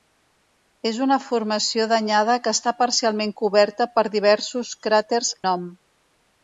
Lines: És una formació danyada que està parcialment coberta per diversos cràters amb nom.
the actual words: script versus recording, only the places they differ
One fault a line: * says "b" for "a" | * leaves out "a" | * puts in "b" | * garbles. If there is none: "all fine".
* leaves out "amb"